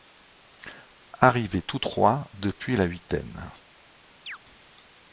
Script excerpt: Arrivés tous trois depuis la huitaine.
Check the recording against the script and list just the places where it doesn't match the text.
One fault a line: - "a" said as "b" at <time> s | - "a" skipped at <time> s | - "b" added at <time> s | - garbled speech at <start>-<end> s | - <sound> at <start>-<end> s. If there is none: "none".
- chirp at 4.3-4.4 s